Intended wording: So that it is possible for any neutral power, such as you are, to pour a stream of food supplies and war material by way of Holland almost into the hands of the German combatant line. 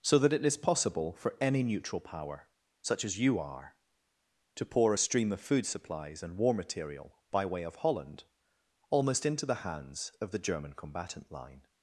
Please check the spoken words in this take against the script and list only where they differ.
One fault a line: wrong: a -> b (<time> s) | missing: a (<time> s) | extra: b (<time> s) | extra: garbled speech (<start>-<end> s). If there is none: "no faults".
no faults